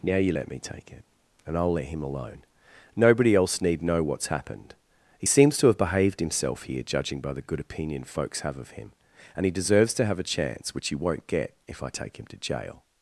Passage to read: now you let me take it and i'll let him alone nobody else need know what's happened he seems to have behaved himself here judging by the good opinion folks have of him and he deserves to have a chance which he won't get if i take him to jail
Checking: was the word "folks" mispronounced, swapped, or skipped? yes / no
no